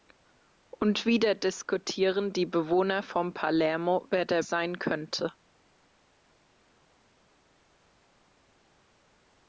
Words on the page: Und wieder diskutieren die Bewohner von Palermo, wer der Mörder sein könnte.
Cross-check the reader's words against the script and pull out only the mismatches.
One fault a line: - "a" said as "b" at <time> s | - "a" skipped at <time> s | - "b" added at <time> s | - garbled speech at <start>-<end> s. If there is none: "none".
- "Mörder" skipped at 4.4 s